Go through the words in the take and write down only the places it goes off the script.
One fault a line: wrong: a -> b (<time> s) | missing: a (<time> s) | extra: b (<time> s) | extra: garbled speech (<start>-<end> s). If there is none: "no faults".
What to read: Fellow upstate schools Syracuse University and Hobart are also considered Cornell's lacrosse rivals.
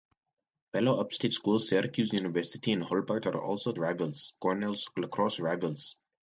wrong: considered -> rivals (3.8 s)